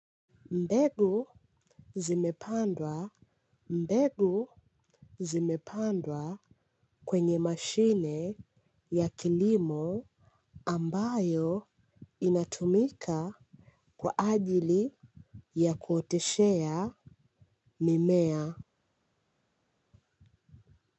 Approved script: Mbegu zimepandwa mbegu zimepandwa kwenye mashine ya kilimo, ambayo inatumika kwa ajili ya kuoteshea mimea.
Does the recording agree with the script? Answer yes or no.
yes